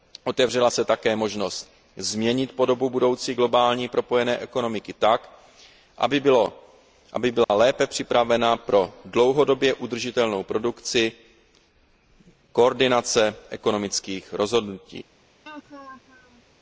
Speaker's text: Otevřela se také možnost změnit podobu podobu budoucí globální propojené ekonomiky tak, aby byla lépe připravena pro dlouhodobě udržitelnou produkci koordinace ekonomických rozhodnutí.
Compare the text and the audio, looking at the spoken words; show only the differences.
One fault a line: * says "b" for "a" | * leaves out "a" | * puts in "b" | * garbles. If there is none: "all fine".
* leaves out "podobu"